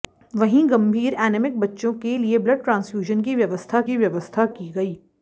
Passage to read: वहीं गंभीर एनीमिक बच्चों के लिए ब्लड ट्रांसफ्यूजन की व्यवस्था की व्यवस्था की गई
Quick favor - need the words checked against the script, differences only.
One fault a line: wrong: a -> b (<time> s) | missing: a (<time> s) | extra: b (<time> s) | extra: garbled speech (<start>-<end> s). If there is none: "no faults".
no faults